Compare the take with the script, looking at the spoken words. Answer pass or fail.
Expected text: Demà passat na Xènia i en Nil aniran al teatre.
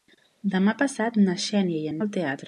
fail